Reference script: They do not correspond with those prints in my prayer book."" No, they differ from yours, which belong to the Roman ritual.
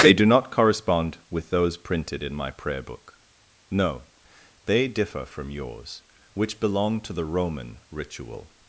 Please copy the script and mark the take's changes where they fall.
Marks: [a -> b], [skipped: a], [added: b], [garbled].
They do not correspond with those [prints -> printed] in my prayer book."" No, they differ from yours, which belong to the Roman ritual.